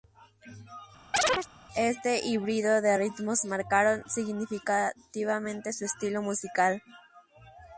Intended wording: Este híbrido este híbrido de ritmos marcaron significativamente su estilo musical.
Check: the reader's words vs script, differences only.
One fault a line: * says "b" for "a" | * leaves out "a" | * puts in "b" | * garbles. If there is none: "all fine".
* leaves out "este híbrido"